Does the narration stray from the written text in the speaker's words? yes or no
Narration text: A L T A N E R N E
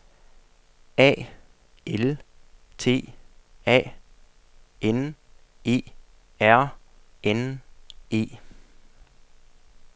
no